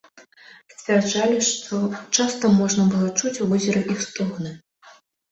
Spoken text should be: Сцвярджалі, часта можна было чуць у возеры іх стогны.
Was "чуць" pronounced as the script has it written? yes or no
yes